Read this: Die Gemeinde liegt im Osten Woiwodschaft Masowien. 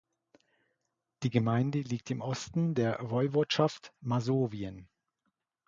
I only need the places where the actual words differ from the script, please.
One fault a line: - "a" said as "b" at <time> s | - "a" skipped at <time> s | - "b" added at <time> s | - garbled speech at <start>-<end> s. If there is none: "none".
- "der" added at 2.7 s